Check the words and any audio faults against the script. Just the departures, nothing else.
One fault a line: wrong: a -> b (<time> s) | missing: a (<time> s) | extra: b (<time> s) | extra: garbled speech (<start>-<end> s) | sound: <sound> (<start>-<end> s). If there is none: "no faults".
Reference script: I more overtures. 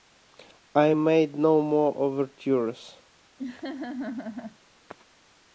extra: made no (0.9 s)
sound: laugh (3.4-4.6 s)